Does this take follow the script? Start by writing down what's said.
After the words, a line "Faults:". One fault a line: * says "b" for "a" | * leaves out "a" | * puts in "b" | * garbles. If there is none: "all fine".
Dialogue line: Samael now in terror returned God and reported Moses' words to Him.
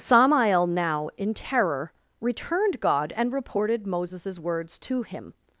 Samael now in terror returned God and reported Moses' words to Him.
Faults:
all fine